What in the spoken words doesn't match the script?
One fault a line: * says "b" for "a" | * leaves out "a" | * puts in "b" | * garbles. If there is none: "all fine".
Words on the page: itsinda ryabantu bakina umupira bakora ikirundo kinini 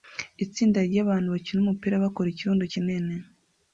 all fine